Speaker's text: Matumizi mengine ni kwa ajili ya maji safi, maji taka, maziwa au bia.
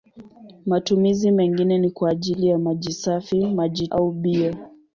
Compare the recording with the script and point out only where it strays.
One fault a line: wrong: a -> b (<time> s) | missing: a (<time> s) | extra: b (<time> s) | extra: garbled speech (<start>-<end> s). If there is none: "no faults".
missing: taka maziwa (3.9 s)